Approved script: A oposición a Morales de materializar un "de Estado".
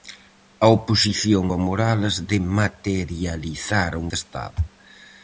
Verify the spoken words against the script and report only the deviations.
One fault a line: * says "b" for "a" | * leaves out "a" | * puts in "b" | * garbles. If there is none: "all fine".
all fine